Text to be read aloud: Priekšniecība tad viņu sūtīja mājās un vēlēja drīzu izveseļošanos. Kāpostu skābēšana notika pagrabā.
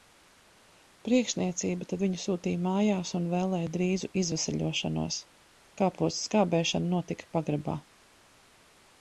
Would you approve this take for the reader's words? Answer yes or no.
yes